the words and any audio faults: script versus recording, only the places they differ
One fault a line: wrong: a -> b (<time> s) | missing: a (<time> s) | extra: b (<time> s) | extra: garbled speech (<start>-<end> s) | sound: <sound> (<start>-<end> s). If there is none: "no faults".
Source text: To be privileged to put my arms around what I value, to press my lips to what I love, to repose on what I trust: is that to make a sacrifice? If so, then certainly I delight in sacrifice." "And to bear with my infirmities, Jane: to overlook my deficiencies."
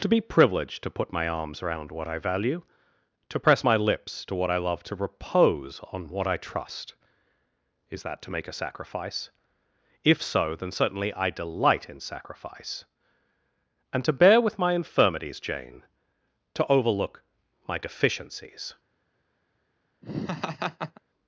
sound: laugh (20.0-21.0 s)